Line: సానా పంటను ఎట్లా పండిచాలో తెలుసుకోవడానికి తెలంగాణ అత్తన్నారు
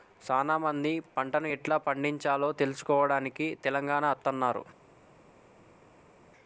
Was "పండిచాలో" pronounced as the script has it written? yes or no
yes